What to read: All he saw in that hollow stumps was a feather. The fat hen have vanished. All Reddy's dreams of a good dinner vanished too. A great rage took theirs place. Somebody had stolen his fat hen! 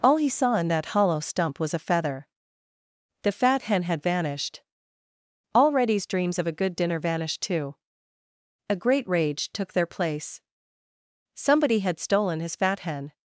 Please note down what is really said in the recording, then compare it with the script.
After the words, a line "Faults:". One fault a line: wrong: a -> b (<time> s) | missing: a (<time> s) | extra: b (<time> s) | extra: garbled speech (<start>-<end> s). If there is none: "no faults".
All he saw in that hollow stump was a feather. The fat hen had vanished. All Reddy's dreams of a good dinner vanished too. A great rage took their place. Somebody had stolen his fat hen!
Faults:
wrong: stumps -> stump (1.2 s)
wrong: have -> had (3.8 s)
wrong: theirs -> their (9.7 s)